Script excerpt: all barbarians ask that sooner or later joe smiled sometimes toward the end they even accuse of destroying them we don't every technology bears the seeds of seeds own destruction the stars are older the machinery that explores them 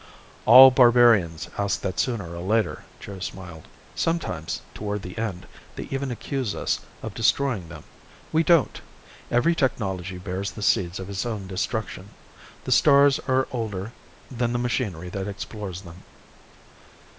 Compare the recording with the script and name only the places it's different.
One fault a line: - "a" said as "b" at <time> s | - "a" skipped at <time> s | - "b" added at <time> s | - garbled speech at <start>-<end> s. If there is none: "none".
- "us" added at 6.5 s
- "seeds" said as "its" at 11.1 s
- "than" added at 14.3 s